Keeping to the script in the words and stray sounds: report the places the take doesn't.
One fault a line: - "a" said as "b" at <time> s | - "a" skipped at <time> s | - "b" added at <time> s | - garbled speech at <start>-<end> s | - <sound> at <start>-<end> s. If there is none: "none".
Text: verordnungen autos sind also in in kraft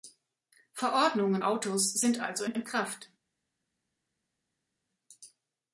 none